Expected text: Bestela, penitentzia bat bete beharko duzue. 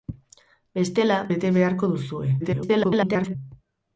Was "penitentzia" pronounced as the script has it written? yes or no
no